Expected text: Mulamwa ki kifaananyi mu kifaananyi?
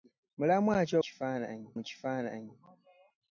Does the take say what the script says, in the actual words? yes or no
yes